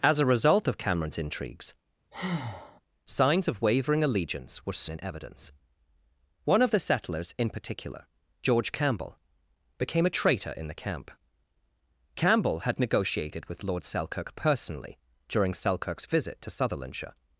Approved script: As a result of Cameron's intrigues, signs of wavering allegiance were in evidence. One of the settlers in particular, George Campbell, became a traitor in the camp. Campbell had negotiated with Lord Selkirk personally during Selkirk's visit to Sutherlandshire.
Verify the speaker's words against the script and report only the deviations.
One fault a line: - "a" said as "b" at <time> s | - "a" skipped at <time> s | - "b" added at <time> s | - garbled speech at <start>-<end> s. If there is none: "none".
none